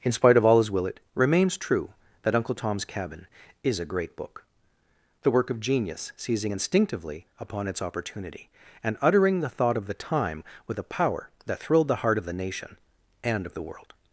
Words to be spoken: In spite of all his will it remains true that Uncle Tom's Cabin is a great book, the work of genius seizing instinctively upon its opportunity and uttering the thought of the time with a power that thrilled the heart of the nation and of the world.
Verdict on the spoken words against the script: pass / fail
pass